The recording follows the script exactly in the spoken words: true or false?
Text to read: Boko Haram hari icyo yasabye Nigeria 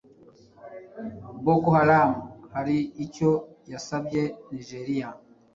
true